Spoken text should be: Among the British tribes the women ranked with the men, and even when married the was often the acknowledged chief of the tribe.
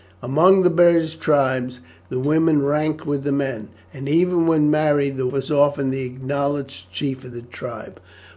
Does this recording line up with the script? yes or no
yes